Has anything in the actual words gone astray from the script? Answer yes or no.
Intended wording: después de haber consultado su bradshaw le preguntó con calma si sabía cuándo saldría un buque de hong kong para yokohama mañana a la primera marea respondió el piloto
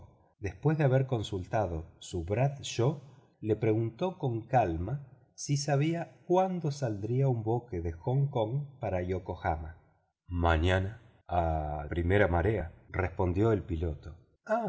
yes